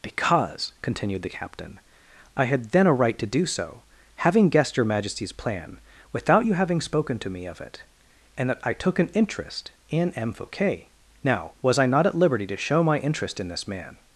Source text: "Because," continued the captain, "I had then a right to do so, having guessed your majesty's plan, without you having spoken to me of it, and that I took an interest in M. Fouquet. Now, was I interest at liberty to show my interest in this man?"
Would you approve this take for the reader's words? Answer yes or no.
no